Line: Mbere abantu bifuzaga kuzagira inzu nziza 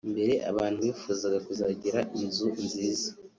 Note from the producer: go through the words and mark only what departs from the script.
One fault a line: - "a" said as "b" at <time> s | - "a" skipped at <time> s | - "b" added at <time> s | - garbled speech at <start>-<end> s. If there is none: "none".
none